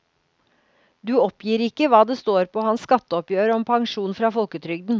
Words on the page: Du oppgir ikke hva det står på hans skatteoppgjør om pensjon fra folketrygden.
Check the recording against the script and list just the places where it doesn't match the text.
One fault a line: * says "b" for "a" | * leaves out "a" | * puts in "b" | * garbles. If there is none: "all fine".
all fine